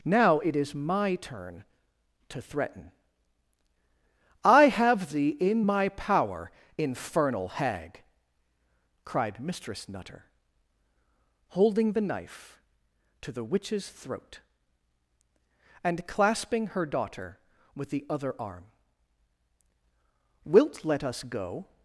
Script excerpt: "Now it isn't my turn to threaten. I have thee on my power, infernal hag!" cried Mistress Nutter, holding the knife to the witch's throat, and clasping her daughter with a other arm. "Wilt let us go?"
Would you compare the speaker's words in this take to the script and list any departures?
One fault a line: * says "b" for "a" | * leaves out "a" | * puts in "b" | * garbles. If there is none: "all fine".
* says "is" for "isn't"
* says "in" for "on"
* says "the" for "a"